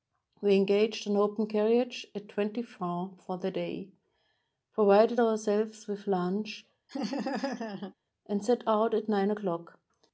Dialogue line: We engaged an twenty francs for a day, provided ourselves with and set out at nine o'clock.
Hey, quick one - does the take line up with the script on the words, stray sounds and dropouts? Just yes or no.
no